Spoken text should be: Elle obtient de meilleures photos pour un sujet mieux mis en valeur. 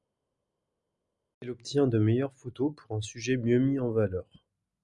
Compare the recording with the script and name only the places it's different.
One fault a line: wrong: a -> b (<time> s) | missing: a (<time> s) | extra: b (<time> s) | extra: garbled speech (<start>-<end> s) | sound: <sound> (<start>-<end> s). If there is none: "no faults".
no faults